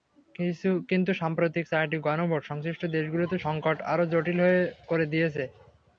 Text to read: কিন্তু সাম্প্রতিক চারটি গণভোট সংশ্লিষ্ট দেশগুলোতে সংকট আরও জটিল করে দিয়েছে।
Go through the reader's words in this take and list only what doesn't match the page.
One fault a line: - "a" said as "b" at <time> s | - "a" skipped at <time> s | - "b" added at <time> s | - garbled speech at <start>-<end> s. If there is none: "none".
none